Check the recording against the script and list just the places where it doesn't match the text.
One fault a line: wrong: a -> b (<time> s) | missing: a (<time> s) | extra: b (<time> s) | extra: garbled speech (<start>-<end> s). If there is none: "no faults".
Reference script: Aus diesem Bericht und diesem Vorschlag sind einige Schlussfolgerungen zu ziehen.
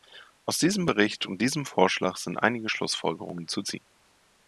no faults